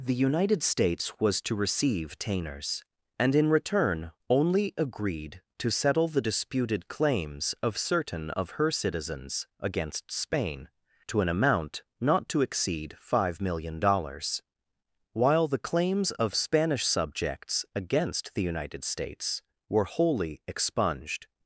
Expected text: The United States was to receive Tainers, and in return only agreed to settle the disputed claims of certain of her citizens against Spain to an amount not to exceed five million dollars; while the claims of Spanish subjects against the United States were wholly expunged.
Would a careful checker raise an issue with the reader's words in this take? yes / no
no